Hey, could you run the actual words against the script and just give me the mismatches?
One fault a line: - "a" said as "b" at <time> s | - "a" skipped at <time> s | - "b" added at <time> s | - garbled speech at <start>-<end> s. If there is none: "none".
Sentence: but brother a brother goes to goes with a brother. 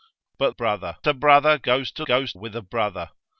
none